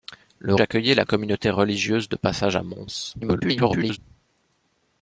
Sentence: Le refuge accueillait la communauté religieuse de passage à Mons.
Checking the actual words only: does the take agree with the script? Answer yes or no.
no